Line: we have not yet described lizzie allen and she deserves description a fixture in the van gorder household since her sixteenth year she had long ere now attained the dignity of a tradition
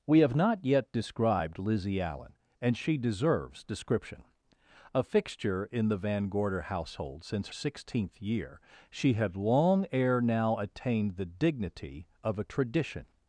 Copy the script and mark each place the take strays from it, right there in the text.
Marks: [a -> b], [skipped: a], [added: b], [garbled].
we have not yet described lizzie allen and she deserves description a fixture in the van gorder household since [skipped: her] sixteenth year she had long ere now attained the dignity of a tradition